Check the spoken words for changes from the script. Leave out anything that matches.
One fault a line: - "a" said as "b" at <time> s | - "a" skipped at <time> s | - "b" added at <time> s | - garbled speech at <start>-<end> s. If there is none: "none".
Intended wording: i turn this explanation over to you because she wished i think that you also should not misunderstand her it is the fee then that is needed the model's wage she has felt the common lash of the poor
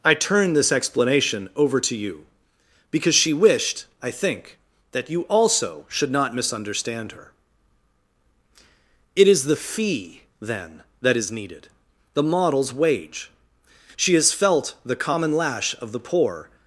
none